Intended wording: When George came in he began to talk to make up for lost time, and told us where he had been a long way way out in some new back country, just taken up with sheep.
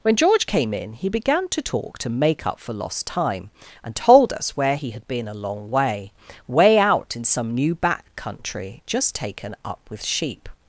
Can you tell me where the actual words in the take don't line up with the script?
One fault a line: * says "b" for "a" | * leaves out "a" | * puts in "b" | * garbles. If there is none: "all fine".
all fine